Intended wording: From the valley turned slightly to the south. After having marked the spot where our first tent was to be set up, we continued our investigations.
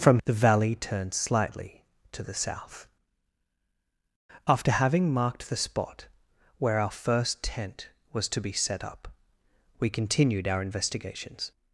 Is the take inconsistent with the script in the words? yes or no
no